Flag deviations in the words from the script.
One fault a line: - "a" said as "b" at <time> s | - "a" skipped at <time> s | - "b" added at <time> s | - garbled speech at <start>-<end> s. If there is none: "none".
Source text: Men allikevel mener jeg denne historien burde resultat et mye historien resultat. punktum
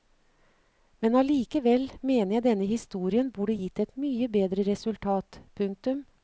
- "resultat" said as "gitt" at 3.6 s
- "historien" said as "bedre" at 4.4 s